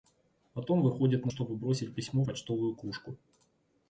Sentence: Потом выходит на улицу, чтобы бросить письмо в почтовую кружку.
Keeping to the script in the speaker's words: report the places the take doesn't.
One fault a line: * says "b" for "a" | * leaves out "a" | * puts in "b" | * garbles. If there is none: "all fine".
* leaves out "улицу"
* leaves out "в"